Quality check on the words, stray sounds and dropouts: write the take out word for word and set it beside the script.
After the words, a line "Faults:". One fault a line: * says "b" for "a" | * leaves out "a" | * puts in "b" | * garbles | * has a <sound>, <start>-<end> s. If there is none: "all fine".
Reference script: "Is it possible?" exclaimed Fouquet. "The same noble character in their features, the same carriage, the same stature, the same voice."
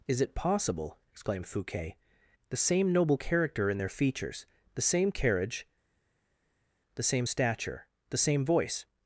"Is it possible?" exclaimed Fouquet. "The same noble character in their features, the same carriage, the same stature, the same voice."
Faults:
all fine